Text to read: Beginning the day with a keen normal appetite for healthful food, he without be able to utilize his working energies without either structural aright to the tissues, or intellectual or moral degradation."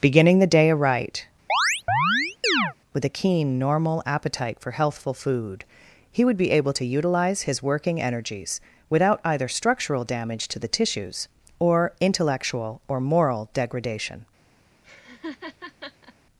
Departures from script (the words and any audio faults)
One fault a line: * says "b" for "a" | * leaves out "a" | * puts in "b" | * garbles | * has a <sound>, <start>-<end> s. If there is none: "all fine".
* puts in "aright"
* has a chirp, 1.5-2.7 s
* says "would" for "without"
* says "damage" for "aright"
* has a laugh, 14.8-16.1 s